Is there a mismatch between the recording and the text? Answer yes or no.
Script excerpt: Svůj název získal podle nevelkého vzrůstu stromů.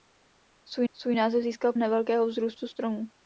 yes